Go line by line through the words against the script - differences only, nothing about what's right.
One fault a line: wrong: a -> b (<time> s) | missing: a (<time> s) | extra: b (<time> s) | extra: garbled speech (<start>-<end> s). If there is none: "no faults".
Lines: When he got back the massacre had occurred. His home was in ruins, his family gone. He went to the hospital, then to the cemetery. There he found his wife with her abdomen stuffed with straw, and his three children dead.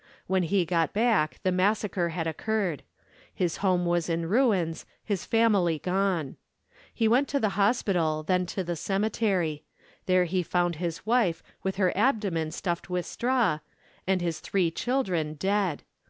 no faults